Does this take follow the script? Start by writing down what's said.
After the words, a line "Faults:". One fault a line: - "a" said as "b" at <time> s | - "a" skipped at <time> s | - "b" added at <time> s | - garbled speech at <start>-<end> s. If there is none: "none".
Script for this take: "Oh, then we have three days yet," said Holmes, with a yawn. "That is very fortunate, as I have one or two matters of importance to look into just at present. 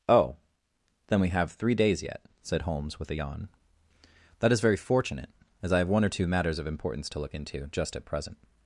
"Oh, then we have three days yet," said Holmes, with a yawn. "That is very fortunate, as I have one or two matters of importance to look into just at present.
Faults:
none